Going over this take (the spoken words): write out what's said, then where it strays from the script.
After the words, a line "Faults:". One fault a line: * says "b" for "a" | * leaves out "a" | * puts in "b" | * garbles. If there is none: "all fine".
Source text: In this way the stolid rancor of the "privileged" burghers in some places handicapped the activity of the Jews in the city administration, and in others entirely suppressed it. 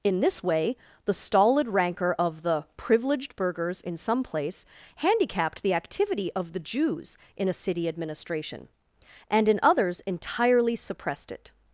In this way the stolid rancor of the "privileged" burghers in some place handicapped the activity of the Jews in a city administration, and in others entirely suppressed it.
Faults:
* says "place" for "places"
* says "a" for "the"